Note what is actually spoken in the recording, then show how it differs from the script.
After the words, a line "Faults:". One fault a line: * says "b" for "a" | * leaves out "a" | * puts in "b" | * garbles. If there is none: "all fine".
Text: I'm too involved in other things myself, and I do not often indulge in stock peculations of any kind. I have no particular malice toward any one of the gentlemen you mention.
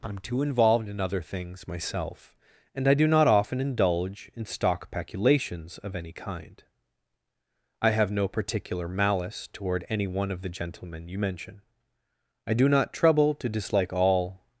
I'm too involved in other things myself, and I do not often indulge in stock peculations of any kind. I have no particular malice toward any one of the gentlemen you mention. I do not trouble to dislike all
Faults:
* puts in "I do not trouble to dislike all"